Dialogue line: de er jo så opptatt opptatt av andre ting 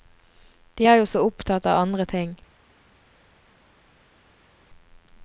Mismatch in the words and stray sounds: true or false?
true